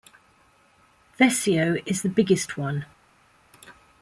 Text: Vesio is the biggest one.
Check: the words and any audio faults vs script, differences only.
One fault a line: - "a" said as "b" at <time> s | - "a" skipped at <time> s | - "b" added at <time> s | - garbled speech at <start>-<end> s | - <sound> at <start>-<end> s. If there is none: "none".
none